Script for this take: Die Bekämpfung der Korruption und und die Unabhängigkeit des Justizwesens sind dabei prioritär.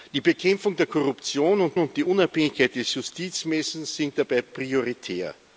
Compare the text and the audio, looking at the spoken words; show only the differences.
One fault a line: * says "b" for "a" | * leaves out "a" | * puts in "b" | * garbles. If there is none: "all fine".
all fine